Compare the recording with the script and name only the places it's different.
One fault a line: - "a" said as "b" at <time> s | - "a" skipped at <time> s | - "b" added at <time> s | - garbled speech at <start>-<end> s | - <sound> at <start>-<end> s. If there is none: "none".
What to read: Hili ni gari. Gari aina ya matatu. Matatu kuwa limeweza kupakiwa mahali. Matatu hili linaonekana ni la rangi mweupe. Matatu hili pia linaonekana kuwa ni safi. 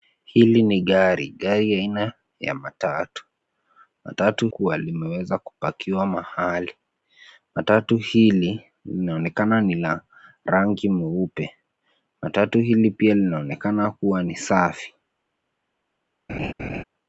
- laugh at 16.3-16.8 s